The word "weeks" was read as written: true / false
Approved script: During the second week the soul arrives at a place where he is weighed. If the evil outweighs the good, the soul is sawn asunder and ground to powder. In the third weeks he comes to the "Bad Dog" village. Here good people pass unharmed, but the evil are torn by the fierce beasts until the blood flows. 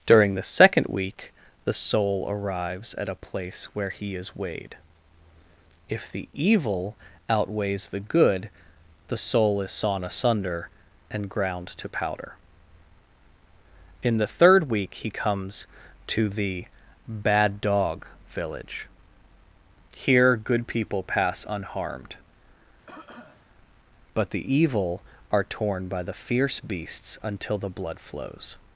false